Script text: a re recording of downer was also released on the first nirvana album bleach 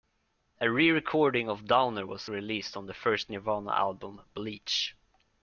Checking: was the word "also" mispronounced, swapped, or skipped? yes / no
yes